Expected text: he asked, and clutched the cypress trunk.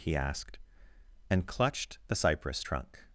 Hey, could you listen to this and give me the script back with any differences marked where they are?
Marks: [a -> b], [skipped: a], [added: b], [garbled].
he asked, and clutched the cypress trunk.